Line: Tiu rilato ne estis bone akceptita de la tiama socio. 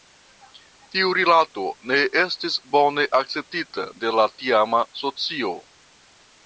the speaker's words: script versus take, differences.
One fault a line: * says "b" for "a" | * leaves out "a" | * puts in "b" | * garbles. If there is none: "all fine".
all fine